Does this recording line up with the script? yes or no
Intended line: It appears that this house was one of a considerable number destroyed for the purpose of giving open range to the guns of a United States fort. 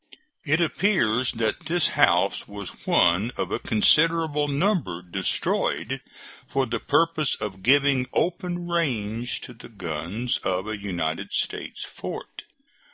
yes